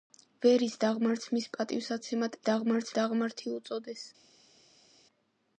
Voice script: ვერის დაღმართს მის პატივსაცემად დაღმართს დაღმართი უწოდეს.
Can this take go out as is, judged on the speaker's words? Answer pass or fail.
pass